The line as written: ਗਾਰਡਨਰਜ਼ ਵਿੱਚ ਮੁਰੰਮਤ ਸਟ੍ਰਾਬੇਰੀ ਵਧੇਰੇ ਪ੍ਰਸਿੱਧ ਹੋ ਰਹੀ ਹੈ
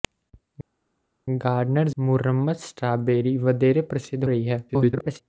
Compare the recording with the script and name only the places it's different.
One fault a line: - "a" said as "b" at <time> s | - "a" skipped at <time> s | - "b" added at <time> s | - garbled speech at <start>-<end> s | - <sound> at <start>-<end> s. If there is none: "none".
- "ਵਿੱਚ" skipped at 2.0 s
- "ਹੋ" skipped at 4.3 s
- garbled speech at 4.7-5.2 s